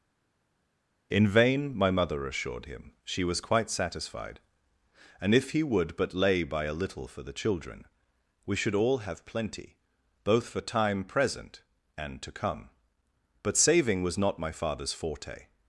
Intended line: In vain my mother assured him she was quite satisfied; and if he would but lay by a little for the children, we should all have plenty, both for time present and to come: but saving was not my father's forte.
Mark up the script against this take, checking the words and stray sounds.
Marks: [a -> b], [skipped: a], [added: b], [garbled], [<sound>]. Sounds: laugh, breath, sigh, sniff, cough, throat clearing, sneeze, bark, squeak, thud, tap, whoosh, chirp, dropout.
In vain my mother assured him she was quite satisfied; and if he would but lay by a little for the children, we should all have plenty, both for time present and to come: but saving was not my father's forte.